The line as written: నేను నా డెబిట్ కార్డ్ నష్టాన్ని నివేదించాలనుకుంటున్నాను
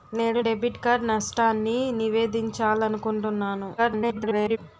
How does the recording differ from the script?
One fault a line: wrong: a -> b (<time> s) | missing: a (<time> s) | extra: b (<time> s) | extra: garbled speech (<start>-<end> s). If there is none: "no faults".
missing: నా (0.4 s)
extra: garbled speech (3.8-4.6 s)